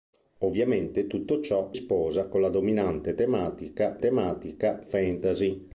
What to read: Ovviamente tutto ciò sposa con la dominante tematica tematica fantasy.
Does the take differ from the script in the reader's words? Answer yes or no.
no